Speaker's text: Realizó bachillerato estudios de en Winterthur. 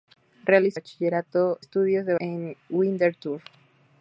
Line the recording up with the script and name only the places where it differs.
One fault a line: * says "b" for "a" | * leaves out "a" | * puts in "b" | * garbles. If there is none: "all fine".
all fine